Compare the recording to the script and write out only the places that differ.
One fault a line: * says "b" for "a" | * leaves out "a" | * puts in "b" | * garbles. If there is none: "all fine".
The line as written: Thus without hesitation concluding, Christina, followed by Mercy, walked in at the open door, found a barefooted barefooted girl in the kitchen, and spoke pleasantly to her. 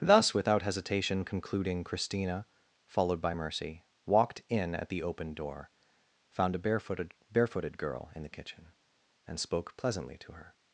all fine